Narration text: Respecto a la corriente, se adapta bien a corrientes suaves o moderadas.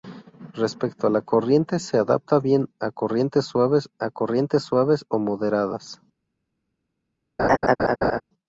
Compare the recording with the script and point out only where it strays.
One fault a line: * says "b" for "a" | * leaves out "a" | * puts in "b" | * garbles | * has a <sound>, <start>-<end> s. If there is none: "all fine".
* puts in "a corrientes suaves"
* has a laugh, 7.4-8.2 s